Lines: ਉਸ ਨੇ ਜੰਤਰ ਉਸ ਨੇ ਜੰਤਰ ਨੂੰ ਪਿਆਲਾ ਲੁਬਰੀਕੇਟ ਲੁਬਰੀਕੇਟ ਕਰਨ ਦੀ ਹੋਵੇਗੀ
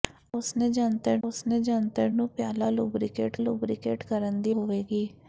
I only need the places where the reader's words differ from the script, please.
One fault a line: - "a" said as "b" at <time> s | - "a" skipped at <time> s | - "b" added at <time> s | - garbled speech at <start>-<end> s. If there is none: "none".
none